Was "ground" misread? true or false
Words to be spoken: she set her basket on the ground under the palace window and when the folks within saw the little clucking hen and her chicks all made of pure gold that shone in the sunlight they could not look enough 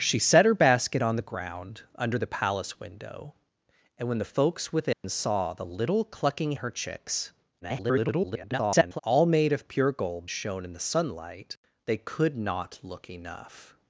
false